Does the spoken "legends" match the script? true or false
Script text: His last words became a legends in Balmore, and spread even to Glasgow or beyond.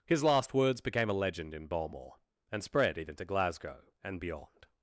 false